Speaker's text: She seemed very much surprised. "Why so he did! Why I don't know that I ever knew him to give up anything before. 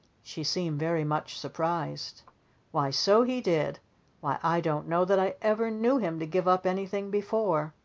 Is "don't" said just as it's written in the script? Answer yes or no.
yes